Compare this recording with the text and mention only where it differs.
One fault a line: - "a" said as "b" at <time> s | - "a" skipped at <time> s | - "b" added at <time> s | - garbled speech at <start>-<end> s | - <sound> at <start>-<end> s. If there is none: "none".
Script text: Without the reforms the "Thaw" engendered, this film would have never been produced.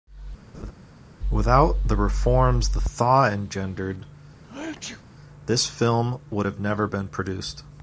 - laugh at 0.5-0.7 s
- sneeze at 4.4-5.0 s